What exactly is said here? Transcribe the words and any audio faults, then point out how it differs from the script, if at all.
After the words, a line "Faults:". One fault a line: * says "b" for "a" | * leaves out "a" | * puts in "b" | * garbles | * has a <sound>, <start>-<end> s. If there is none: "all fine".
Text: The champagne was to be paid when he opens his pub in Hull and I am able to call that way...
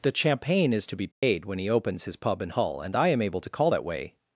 The champagne is to be paid when he opens his pub in Hull and I am able to call that way...
Faults:
* says "is" for "was"
* has a dropout, 1.1-1.2 s